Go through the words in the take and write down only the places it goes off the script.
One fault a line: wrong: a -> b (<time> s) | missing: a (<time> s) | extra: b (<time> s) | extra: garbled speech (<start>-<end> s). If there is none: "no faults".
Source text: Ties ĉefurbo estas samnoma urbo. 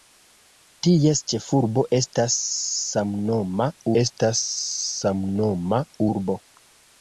extra: estas samnoma (4.0 s)